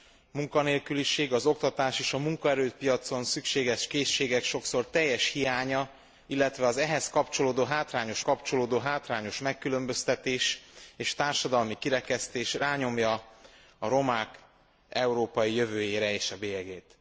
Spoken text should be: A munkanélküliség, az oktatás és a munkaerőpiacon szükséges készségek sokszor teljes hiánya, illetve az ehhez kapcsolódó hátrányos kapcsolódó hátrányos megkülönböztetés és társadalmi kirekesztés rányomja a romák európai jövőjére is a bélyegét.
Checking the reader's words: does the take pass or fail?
pass